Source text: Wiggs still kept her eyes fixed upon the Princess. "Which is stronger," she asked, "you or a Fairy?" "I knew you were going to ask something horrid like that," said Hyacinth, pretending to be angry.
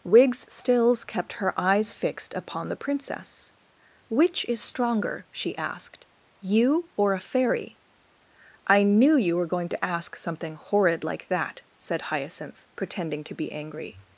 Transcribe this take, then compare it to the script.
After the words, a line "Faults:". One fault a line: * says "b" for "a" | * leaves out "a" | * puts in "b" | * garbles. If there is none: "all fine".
Wiggs stills kept her eyes fixed upon the Princess. "Which is stronger," she asked, "you or a Fairy?" "I knew you were going to ask something horrid like that," said Hyacinth, pretending to be angry.
Faults:
* says "stills" for "still"